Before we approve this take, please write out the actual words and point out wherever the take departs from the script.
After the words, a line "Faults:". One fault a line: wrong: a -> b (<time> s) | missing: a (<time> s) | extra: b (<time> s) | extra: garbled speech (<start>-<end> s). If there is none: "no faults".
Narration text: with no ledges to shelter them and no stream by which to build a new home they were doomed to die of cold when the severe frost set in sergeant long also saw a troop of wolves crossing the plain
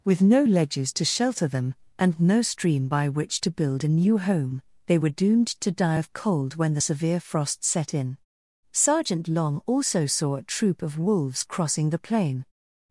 with no ledges to shelter them and no stream by which to build a new home they were doomed to die of cold when the severe frost set in sergeant long also saw a troop of wolves crossing the plain
Faults:
no faults